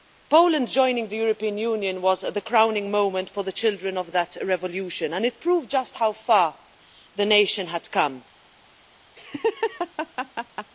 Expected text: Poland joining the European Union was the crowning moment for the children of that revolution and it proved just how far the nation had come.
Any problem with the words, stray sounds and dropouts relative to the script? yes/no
yes